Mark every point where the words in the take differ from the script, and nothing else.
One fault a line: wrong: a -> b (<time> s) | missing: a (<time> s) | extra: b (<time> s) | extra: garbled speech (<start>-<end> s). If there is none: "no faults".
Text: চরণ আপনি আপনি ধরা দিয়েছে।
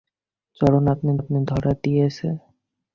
no faults